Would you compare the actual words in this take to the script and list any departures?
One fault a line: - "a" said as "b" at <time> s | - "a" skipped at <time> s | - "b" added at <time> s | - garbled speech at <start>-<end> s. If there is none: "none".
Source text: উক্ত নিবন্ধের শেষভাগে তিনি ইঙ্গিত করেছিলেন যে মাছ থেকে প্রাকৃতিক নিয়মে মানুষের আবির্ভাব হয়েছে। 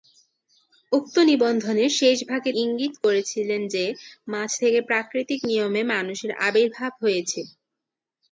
- "তিনি" skipped at 2.5 s